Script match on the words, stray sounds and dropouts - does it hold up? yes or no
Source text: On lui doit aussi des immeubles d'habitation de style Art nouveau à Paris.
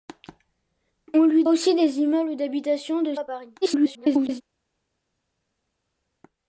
no